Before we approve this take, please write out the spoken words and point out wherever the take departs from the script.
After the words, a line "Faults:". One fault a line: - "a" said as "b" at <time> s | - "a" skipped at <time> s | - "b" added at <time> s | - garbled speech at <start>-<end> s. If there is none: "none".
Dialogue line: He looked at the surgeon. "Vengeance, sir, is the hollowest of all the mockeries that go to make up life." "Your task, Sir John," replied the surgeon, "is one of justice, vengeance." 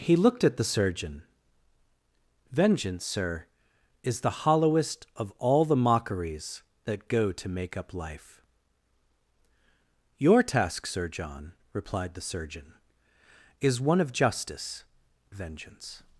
He looked at the surgeon. "Vengeance, sir, is the hollowest of all the mockeries that go to make up life." "Your task, Sir John," replied the surgeon, "is one of justice, vengeance."
Faults:
none